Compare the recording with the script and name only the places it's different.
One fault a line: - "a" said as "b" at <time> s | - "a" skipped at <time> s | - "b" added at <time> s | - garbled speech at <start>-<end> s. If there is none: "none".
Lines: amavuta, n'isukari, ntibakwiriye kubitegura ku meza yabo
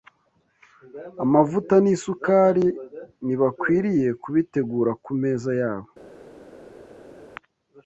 none